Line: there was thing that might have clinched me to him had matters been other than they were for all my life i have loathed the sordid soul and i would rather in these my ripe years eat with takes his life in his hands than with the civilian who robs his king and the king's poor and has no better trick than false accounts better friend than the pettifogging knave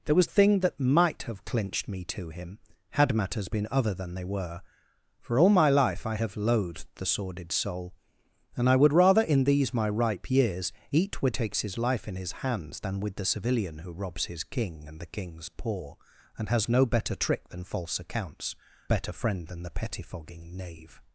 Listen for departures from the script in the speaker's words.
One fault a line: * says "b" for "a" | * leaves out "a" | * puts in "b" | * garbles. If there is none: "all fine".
all fine